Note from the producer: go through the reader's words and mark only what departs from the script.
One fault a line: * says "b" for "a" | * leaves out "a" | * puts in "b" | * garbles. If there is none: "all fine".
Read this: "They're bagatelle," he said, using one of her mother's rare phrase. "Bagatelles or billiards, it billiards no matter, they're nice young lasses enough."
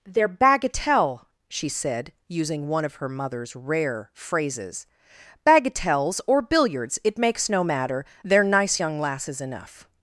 * says "she" for "he"
* says "phrases" for "phrase"
* says "makes" for "billiards"